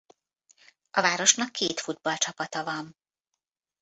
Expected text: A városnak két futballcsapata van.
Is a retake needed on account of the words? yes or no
no